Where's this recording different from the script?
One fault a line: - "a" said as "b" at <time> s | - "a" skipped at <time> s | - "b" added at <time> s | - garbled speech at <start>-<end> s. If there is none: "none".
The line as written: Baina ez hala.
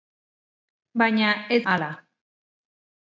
none